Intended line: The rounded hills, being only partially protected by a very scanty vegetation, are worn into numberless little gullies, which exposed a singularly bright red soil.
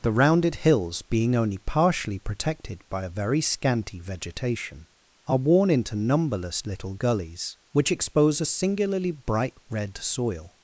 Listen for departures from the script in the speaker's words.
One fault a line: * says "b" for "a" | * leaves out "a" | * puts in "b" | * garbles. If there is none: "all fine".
* says "expose" for "exposed"